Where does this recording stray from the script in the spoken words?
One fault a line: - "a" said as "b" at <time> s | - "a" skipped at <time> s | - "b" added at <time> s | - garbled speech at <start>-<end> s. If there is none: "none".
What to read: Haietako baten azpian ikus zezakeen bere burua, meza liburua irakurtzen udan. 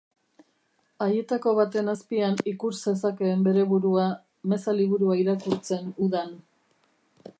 none